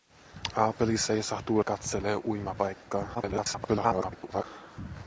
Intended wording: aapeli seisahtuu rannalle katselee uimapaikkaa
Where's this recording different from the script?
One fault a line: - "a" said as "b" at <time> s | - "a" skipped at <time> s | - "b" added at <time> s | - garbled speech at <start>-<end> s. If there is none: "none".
- "rannalle" skipped at 1.6 s
- garbled speech at 3.1-4.4 s